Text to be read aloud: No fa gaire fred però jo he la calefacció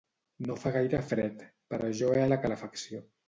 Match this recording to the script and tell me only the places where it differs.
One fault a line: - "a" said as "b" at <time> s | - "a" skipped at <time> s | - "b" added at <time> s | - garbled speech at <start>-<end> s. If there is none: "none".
none